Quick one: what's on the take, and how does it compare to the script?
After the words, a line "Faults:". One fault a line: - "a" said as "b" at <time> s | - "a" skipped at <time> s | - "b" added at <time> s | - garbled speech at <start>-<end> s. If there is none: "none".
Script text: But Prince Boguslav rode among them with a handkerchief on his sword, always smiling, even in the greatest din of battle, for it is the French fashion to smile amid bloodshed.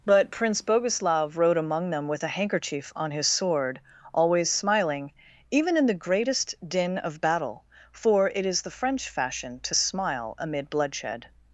But Prince Boguslav rode among them with a handkerchief on his sword, always smiling, even in the greatest din of battle, for it is the French fashion to smile amid bloodshed.
Faults:
none